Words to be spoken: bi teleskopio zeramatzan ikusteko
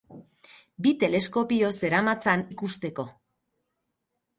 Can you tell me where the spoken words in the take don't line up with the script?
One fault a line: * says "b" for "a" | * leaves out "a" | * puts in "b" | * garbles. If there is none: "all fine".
all fine